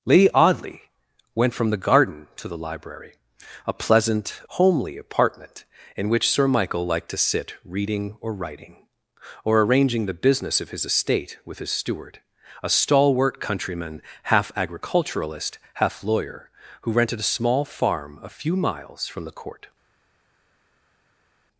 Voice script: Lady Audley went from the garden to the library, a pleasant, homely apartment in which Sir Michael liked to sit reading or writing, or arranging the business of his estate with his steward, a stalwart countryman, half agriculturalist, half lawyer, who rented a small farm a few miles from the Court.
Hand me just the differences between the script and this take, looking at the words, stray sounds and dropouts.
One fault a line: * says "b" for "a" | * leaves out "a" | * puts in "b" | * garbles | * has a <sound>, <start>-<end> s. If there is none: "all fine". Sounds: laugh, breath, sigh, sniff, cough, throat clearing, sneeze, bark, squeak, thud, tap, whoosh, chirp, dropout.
all fine